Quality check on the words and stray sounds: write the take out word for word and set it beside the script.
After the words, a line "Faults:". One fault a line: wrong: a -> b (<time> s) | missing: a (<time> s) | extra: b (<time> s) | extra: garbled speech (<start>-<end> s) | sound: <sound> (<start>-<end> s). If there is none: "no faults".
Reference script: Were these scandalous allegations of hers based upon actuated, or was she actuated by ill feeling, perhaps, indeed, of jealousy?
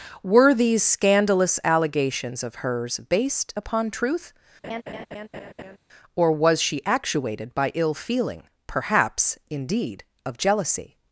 Were these scandalous allegations of hers based upon truth, or was she actuated by ill feeling, perhaps, indeed, of jealousy?
Faults:
wrong: actuated -> truth (3.9 s)
sound: laugh (4.6-5.8 s)